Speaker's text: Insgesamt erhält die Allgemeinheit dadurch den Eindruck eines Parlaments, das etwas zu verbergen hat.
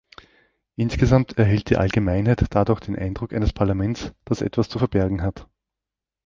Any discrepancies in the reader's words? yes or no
no